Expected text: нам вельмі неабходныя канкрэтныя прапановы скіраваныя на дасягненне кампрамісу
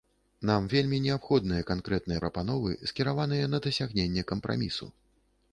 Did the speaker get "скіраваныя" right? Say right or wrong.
right